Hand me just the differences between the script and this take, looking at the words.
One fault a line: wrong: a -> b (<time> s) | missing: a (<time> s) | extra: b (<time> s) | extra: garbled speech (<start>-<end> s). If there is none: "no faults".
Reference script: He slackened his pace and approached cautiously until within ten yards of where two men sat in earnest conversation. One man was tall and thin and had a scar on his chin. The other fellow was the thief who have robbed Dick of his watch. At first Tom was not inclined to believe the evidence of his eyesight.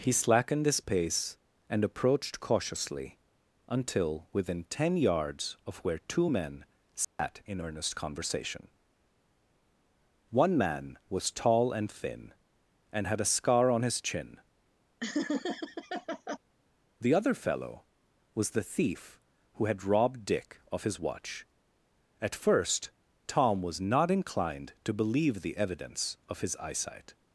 wrong: have -> had (19.7 s)